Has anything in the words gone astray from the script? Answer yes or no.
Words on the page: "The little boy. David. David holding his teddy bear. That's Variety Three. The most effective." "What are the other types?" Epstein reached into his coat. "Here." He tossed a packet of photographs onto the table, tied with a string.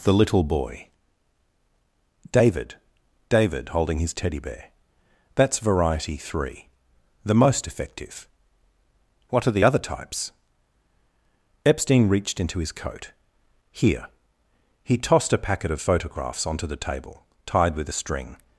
no